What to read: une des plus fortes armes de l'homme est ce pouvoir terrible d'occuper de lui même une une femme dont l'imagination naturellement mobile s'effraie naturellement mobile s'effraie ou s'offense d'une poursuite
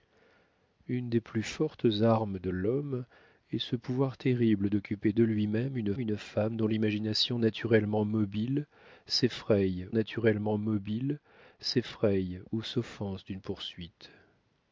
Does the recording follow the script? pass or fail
pass